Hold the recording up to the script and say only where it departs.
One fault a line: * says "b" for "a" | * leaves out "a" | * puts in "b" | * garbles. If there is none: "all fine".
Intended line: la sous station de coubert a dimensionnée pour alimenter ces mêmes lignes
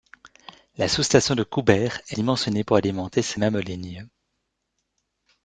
all fine